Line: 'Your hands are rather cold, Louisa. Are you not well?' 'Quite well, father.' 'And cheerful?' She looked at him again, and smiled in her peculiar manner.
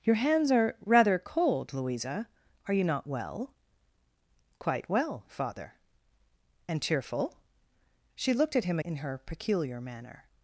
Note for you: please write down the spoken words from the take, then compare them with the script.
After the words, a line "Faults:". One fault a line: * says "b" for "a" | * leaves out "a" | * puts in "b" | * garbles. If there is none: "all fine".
'Your hands are rather cold, Louisa. Are you not well?' 'Quite well, father.' 'And cheerful?' She looked at him in her peculiar manner.
Faults:
* leaves out "again and smiled"